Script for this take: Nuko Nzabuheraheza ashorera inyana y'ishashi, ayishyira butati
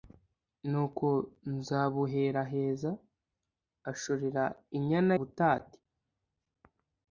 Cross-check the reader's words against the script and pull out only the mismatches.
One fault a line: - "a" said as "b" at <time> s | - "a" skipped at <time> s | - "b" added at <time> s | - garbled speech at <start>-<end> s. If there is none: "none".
- "y'ishashi ayishyira" skipped at 5.1 s